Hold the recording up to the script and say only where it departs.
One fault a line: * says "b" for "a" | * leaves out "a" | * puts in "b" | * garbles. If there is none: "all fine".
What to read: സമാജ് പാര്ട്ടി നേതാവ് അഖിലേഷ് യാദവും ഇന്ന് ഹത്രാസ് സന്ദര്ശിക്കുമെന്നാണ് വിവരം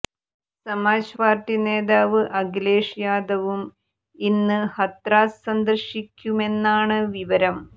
all fine